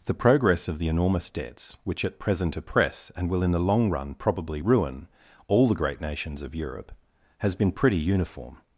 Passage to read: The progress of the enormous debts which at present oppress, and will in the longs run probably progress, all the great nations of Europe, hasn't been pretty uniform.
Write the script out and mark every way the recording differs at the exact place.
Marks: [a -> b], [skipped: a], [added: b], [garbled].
The progress of the enormous debts which at present oppress, and will in the [longs -> long] run probably [progress, -> ruin] all the great nations of Europe, [hasn't -> has] been pretty uniform.